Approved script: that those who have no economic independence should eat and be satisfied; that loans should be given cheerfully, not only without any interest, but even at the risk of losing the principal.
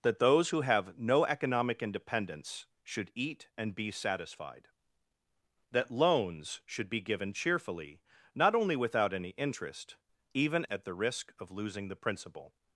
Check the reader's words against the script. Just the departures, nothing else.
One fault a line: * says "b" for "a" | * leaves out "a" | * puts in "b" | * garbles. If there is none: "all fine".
* leaves out "but"